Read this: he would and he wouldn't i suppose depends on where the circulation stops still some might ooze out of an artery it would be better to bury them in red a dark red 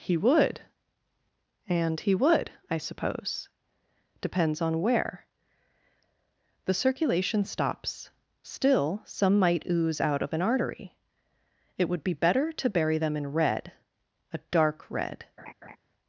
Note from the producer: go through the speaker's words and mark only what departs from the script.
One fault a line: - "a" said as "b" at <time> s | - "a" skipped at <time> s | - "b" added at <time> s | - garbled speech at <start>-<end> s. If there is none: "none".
- "wouldn't" said as "would" at 2.1 s